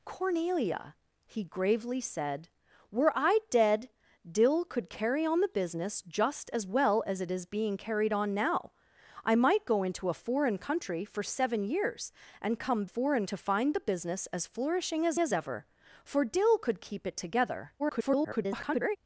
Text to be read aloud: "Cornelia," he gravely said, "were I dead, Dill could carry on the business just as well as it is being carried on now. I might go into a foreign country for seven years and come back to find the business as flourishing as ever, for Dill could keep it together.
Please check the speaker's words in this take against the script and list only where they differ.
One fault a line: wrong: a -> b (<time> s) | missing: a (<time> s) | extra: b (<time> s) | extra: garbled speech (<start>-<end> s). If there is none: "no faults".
wrong: back -> foreign (12.8 s)
extra: as (15.2 s)
extra: garbled speech (17.8-19.0 s)